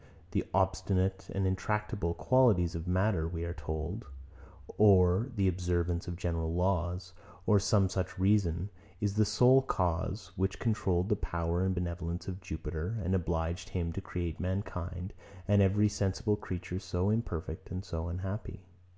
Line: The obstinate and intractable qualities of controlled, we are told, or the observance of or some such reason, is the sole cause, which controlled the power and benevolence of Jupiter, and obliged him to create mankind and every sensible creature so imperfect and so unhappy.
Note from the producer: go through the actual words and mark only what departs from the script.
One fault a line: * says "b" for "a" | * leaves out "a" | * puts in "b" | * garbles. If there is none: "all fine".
* says "matter" for "controlled"
* puts in "general laws"